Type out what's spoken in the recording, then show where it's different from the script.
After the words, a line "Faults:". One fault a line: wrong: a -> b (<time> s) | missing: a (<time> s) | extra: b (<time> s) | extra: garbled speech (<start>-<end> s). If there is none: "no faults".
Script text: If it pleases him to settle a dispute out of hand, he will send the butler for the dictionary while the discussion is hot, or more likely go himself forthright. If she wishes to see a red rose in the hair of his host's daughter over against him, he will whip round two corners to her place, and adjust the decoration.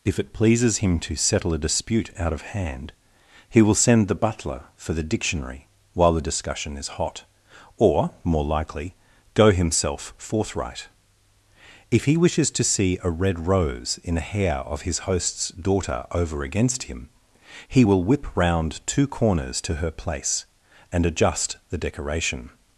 If it pleases him to settle a dispute out of hand, he will send the butler for the dictionary while the discussion is hot, or more likely go himself forthright. If he wishes to see a red rose in the hair of his host's daughter over against him, he will whip round two corners to her place, and adjust the decoration.
Faults:
wrong: she -> he (12.1 s)